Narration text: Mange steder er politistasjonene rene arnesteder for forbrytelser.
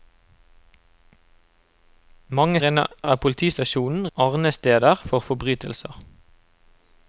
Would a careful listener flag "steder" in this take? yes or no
yes